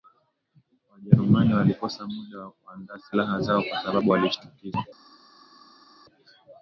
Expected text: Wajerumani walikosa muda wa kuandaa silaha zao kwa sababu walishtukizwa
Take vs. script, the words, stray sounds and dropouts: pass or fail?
pass